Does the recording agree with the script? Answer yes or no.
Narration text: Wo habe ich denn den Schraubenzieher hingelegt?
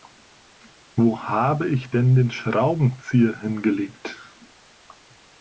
yes